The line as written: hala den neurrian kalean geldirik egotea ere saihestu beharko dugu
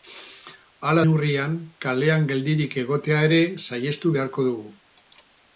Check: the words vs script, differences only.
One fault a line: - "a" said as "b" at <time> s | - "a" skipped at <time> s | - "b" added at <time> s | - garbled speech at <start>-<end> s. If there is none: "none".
- "den" skipped at 1.0 s